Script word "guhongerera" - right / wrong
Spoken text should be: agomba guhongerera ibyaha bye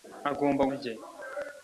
wrong